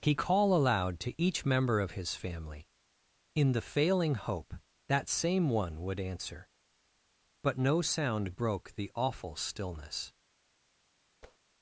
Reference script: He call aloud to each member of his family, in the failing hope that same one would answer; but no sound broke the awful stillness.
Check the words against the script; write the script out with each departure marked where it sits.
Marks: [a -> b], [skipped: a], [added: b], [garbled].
He call aloud to each member of his family, in the failing hope that same one would answer; but no sound broke the awful stillness.